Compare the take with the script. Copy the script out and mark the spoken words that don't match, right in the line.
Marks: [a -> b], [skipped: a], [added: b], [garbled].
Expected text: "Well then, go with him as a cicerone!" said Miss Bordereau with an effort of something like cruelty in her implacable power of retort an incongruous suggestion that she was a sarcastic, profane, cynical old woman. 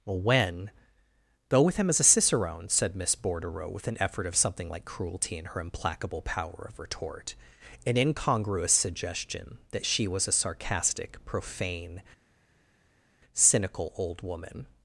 "Well [then, -> when] go with him as a cicerone!" said Miss Bordereau with an effort of something like cruelty in her implacable power of retort an incongruous suggestion that she was a sarcastic, profane, cynical old woman.